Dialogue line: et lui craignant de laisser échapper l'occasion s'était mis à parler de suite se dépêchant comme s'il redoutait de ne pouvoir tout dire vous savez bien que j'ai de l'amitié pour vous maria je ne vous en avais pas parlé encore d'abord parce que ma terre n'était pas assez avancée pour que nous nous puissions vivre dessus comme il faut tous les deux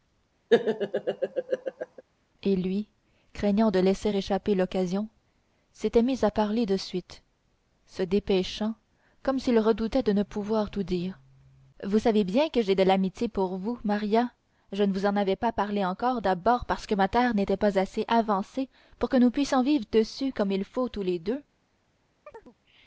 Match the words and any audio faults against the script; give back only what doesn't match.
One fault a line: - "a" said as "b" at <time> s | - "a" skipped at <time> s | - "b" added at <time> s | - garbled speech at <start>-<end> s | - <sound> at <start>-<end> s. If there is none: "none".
- laugh at 0.5-2.0 s
- "nous" skipped at 19.3 s
- chirp at 22.3-22.6 s